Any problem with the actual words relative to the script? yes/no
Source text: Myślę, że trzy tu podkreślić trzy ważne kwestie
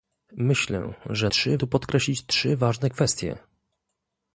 no